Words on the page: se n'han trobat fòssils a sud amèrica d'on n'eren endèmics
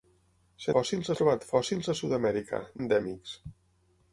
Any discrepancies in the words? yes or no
yes